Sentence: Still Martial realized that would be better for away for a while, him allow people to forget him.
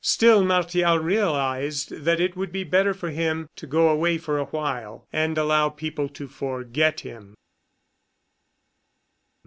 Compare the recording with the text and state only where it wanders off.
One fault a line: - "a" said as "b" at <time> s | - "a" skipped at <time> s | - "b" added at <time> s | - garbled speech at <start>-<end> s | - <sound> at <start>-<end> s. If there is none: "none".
- "it" added at 2.2 s
- "him to go" added at 3.1 s
- "him" said as "and" at 5.1 s